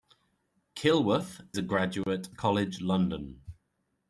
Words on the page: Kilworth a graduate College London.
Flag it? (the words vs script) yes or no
no